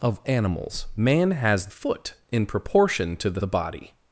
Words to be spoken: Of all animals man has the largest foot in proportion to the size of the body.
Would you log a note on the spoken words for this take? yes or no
yes